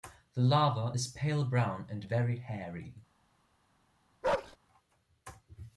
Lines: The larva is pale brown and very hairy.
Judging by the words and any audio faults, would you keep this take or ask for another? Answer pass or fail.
fail